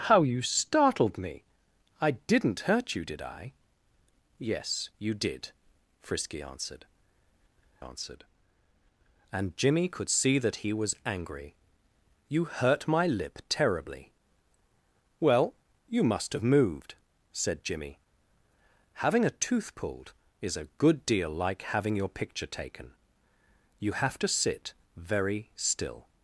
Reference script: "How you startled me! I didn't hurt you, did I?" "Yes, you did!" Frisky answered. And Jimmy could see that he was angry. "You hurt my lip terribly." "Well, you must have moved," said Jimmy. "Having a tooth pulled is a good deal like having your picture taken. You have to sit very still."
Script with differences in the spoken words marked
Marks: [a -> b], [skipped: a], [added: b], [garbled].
"How you startled me! I didn't hurt you, did I?" "Yes, you did!" Frisky answered. [added: answered] And Jimmy could see that he was angry. "You hurt my lip terribly." "Well, you must have moved," said Jimmy. "Having a tooth pulled is a good deal like having your picture taken. You have to sit very still."